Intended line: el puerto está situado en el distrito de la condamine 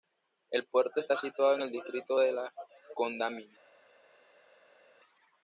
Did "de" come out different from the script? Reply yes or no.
no